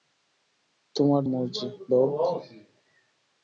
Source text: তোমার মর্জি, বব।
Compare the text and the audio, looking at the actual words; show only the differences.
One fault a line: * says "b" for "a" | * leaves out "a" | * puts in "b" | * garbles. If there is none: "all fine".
all fine